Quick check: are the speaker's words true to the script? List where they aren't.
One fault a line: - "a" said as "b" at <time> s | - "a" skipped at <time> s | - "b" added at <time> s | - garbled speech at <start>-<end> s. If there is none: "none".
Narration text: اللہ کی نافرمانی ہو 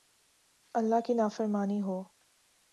none